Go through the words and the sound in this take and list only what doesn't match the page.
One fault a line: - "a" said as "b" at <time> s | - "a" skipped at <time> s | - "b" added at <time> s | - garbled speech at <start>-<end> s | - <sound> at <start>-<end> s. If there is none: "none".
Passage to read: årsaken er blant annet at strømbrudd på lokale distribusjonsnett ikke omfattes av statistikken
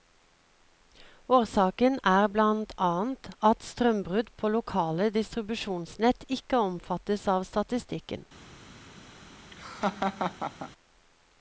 - laugh at 9.5-10.7 s